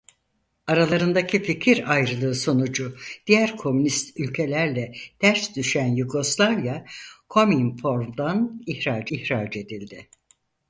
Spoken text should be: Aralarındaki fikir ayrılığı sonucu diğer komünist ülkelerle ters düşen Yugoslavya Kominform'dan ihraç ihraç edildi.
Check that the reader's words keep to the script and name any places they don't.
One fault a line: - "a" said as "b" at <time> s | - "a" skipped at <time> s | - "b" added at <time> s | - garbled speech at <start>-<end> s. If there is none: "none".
none